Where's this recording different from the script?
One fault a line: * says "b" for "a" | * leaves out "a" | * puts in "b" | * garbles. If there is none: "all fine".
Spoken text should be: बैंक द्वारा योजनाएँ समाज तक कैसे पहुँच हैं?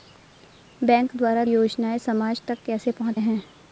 all fine